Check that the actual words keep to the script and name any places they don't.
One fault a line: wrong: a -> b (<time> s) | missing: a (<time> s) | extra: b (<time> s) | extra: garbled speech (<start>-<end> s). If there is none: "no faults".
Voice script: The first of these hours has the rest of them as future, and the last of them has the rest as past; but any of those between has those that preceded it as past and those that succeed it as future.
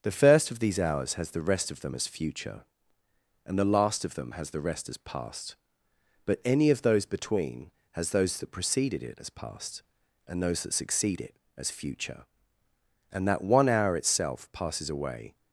extra: And that one hour itself passes away (13.1 s)